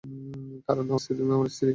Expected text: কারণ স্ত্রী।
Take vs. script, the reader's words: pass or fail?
pass